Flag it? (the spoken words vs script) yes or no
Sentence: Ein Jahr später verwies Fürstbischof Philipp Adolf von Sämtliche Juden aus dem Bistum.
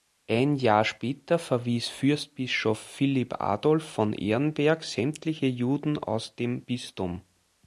yes